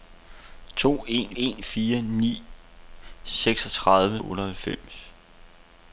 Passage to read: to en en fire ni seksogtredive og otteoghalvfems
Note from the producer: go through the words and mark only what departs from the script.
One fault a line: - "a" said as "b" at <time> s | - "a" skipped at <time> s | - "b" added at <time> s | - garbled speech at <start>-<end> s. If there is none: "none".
none